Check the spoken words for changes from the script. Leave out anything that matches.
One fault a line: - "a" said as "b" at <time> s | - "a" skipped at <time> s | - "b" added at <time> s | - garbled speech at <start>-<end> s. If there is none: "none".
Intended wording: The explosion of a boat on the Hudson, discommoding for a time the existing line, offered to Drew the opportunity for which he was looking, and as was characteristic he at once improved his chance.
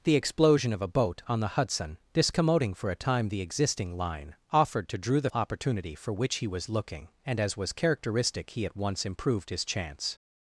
none